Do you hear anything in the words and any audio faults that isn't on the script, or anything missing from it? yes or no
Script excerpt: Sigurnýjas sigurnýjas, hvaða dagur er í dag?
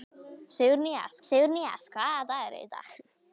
no